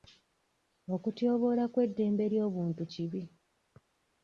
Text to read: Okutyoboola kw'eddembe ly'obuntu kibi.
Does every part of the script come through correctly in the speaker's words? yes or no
yes